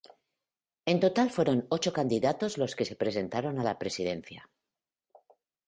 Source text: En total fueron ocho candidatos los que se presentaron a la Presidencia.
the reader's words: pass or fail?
pass